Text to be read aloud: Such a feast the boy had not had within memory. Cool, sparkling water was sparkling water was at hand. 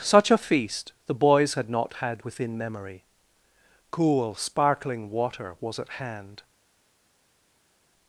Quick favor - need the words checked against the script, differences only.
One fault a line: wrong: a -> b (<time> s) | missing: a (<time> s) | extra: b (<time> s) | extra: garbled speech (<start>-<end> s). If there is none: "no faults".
wrong: boy -> boys (1.1 s)
missing: sparkling water was (5.8 s)